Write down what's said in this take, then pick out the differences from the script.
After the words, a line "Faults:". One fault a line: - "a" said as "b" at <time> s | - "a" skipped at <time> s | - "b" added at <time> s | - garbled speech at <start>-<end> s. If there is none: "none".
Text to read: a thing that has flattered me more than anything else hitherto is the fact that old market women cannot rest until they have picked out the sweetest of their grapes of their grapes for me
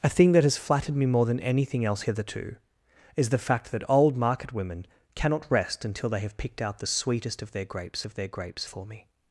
a thing that has flattered me more than anything else hitherto is the fact that old market women cannot rest until they have picked out the sweetest of their grapes of their grapes for me
Faults:
none